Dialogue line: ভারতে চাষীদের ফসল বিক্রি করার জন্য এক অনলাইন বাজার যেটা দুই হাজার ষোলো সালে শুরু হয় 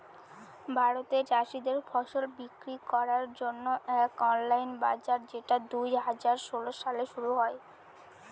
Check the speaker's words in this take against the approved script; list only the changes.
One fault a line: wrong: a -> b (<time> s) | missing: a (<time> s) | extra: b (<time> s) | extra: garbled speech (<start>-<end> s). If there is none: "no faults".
no faults